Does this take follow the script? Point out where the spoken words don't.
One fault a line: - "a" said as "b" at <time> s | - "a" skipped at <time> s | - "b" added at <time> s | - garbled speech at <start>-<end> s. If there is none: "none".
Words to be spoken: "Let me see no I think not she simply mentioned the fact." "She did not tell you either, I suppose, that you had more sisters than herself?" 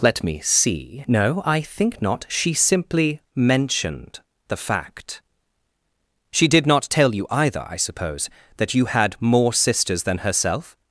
none